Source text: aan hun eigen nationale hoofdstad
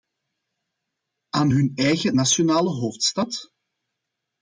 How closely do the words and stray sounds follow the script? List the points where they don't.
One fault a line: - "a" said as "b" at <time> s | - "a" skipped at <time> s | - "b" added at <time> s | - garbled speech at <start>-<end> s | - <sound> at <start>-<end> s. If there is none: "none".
none